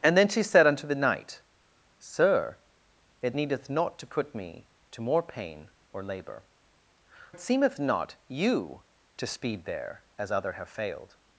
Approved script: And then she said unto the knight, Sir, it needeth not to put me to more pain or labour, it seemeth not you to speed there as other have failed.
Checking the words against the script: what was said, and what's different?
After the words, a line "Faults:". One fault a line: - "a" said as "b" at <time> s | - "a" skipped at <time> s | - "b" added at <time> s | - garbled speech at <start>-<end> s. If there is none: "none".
And then she said unto the knight, Sir, it needeth not to put me to more pain or labour, it seemeth not you to speed there as other have failed.
Faults:
none